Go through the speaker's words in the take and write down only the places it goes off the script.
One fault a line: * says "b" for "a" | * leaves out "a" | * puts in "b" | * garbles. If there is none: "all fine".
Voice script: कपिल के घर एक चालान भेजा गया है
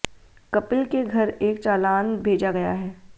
all fine